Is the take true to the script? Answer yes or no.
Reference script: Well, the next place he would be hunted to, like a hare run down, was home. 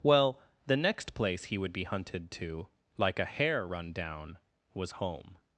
yes